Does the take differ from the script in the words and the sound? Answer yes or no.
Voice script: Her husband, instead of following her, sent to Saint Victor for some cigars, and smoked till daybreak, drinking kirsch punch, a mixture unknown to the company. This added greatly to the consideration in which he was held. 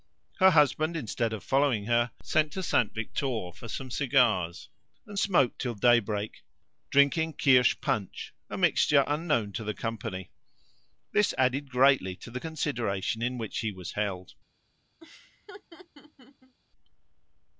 yes